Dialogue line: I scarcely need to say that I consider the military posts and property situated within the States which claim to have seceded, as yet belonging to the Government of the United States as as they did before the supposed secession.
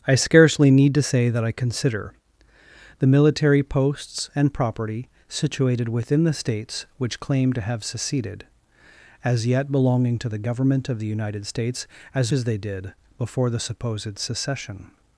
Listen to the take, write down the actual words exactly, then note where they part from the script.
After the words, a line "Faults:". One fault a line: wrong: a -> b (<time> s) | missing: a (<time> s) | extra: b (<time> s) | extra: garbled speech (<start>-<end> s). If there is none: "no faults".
I scarcely need to say that I consider the military posts and property situated within the States which claim to have seceded, as yet belonging to the Government of the United States as as they did before the supposed secession.
Faults:
no faults